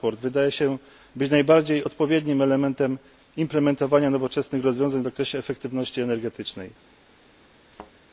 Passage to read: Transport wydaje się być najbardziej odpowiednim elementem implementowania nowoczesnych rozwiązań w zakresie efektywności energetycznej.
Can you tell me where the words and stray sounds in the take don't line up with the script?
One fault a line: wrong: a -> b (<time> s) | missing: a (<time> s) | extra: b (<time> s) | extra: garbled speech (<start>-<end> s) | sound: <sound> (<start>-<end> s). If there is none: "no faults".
sound: thud (7.7-7.9 s)